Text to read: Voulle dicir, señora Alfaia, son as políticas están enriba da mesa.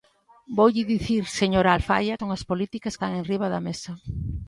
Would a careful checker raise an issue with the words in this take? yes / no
no